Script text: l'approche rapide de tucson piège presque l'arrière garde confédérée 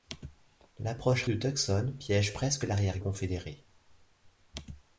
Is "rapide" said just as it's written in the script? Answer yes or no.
no